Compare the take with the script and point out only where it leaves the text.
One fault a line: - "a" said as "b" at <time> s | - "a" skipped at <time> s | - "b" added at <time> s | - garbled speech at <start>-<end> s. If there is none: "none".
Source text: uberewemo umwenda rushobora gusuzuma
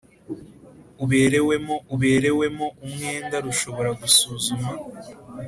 - "uberewemo" added at 1.9 s